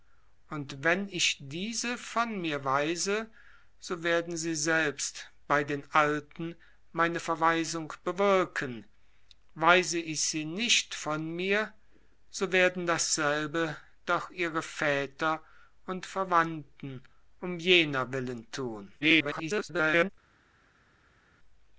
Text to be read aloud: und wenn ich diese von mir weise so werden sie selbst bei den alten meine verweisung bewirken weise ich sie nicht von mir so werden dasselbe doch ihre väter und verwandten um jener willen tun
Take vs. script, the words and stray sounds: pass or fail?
fail